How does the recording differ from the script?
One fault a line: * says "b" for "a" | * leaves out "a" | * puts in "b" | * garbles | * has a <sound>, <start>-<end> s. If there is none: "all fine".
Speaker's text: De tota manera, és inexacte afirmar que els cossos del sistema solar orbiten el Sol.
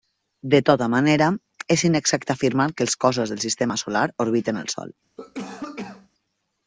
* has a cough, 5.2-6.1 s